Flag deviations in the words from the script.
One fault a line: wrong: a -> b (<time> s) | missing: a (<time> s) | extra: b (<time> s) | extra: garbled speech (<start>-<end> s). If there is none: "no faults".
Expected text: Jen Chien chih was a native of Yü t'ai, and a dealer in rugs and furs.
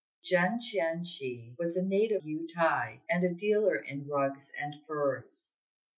missing: of (2.2 s)